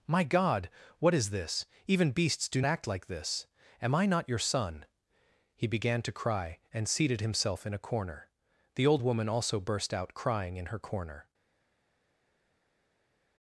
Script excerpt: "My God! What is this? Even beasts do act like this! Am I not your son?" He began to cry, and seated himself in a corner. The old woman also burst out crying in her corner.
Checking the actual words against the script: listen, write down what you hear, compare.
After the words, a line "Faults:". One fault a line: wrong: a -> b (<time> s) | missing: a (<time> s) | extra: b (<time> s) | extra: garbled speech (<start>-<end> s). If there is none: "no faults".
"My God! What is this? Even beasts do act like this! Am I not your son?" He began to cry, and seated himself in a corner. The old woman also burst out crying in her corner.
Faults:
no faults